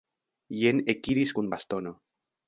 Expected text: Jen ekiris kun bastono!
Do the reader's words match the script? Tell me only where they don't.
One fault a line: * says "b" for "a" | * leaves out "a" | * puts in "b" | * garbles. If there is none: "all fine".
all fine